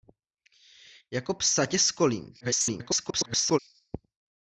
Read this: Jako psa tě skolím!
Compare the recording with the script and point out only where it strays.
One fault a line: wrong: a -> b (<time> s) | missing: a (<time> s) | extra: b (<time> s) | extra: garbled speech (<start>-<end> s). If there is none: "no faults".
extra: garbled speech (2.4-3.6 s)